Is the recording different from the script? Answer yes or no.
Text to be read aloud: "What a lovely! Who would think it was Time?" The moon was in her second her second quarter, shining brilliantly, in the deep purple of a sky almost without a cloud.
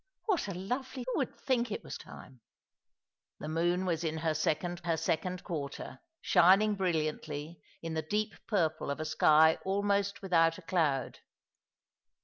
no